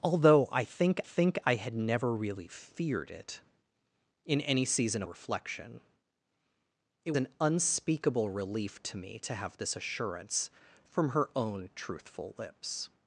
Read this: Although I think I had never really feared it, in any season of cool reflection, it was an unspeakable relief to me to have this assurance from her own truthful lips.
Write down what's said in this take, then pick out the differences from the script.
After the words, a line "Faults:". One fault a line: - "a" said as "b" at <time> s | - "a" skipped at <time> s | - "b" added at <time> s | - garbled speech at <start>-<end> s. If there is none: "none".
Although I think think I had never really feared it, in any season reflection, it an unspeakable relief to me to have this assurance from her own truthful lips.
Faults:
- "think" added at 1.0 s
- "of cool" skipped at 5.0 s
- "was" skipped at 7.1 s